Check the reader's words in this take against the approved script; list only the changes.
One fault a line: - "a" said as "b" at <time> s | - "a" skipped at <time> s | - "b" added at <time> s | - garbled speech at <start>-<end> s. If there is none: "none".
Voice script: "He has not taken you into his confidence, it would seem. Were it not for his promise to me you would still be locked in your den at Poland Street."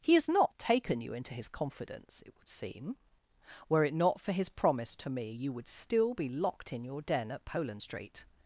none